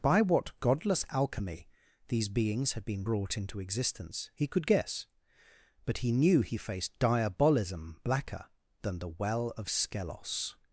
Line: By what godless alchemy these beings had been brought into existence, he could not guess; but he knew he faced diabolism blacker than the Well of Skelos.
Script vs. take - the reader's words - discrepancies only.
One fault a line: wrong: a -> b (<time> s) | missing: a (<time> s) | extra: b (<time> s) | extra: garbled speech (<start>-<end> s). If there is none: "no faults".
missing: not (4.6 s)